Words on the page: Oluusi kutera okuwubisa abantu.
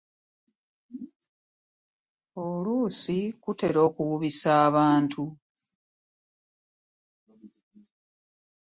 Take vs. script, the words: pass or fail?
pass